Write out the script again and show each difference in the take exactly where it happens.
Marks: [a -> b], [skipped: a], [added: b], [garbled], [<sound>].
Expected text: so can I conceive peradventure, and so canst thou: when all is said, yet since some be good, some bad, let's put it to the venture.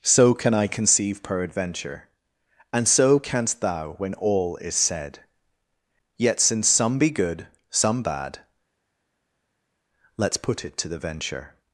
so can I conceive peradventure, and so canst thou: when all is said, yet since some be good, some bad, let's put it to the venture.